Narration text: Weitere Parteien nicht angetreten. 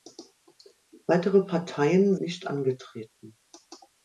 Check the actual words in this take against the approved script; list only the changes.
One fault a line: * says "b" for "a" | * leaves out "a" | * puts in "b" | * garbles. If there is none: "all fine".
all fine